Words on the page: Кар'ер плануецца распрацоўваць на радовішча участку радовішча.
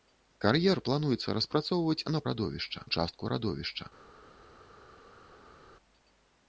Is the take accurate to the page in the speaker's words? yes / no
yes